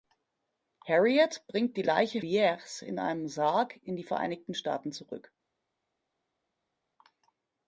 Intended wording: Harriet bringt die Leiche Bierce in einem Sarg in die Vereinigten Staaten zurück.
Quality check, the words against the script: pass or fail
pass